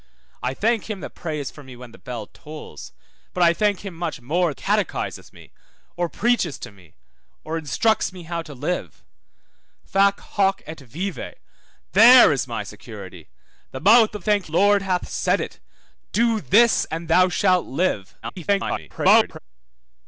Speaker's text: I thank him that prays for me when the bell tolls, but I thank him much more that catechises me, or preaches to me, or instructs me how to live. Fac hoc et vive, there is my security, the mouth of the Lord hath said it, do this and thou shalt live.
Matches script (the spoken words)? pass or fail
fail